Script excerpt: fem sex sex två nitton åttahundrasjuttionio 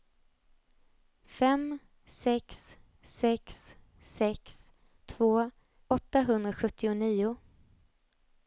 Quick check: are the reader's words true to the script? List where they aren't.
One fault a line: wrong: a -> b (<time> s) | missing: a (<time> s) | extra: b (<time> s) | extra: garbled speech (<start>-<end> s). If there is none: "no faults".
extra: sex (4.0 s)
missing: nitton (5.5 s)